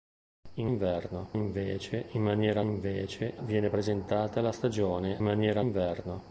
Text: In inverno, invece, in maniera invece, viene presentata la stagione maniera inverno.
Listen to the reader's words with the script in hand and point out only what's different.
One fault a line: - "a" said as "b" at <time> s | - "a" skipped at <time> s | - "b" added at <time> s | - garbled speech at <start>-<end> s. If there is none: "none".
none